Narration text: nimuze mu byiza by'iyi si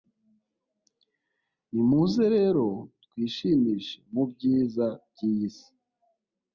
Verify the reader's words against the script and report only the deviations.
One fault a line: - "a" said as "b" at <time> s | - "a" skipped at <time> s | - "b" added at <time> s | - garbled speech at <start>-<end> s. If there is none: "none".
- "rero twishimishe" added at 2.4 s